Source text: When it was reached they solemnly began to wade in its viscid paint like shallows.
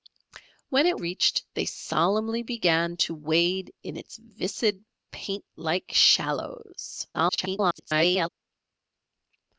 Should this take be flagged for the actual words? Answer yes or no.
yes